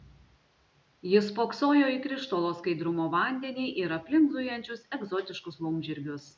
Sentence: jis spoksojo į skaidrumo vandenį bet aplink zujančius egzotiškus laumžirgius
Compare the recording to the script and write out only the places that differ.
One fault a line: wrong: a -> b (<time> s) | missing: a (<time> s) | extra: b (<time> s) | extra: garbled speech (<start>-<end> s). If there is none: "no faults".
extra: krištolo (2.0 s)
wrong: bet -> ir (3.8 s)